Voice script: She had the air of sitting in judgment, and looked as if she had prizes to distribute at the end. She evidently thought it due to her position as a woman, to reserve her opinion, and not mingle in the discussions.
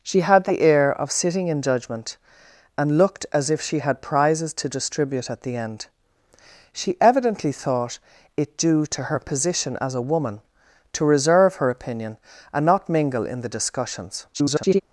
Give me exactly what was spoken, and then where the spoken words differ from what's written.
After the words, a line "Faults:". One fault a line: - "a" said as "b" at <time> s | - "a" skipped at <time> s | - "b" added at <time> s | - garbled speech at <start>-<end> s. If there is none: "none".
She had the air of sitting in judgment, and looked as if she had prizes to distribute at the end. She evidently thought it due to her position as a woman, to reserve her opinion, and not mingle in the discussions. [garbled]
Faults:
- garbled speech at 14.3-14.8 s